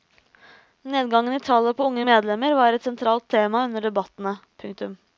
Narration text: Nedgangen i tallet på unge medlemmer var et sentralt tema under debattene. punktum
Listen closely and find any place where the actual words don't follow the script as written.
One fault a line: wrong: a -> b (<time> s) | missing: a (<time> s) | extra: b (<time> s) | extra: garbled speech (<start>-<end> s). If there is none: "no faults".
no faults